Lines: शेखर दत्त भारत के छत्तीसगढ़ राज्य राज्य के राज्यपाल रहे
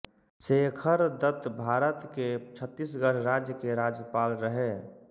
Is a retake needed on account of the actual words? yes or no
yes